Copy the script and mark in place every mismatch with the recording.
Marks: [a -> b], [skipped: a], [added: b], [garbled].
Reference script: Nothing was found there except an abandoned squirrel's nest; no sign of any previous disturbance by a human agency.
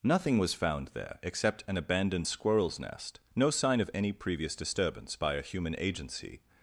Nothing was found there except an abandoned squirrel's nest; no sign of any previous disturbance by a human agency.